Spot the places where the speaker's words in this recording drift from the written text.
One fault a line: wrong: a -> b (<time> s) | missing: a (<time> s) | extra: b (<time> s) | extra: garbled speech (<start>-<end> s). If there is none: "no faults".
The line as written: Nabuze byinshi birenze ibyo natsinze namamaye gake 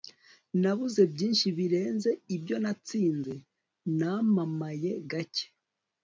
no faults